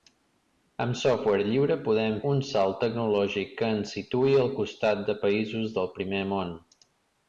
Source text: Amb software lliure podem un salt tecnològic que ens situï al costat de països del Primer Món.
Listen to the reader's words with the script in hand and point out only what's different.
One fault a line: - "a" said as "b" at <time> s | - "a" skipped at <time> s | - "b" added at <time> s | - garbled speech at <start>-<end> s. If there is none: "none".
none